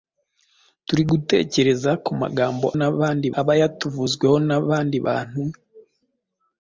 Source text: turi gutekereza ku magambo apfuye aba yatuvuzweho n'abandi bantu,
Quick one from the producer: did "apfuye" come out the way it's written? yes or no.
no